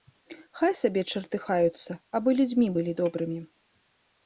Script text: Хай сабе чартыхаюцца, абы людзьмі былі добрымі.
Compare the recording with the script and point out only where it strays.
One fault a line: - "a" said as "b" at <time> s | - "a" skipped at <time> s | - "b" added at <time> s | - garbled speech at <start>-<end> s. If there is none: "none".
none